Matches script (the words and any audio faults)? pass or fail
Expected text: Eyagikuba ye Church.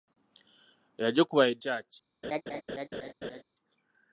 fail